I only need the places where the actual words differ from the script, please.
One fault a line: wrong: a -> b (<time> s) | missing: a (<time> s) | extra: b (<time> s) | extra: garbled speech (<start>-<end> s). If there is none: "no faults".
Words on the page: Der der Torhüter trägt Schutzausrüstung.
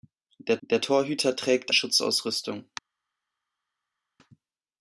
no faults